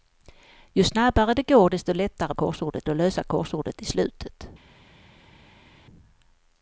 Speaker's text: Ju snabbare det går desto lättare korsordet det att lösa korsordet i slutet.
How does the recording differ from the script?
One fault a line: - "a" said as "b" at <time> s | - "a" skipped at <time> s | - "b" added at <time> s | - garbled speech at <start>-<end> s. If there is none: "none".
none